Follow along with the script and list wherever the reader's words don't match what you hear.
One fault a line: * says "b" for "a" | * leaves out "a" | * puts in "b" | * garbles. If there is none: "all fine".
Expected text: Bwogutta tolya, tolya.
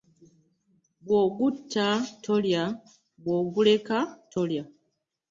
* puts in "bwoguleka"